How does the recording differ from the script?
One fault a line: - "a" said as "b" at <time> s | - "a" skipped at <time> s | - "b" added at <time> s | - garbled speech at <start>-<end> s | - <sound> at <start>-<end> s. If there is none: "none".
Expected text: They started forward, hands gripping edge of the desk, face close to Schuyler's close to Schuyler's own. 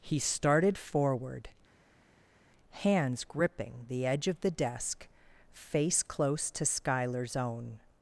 - "They" said as "He" at 0.0 s
- "the" added at 3.9 s
- "close to Schuyler's" skipped at 7.4 s